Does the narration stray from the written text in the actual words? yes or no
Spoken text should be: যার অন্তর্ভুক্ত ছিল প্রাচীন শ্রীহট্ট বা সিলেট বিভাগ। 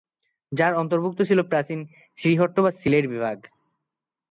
no